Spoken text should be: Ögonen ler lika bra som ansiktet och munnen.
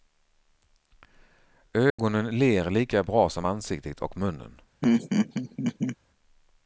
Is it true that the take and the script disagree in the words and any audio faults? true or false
true